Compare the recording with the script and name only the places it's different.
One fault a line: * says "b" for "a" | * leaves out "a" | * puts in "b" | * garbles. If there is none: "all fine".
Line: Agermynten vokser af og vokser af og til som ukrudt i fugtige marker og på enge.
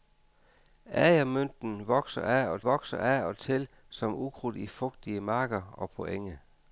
all fine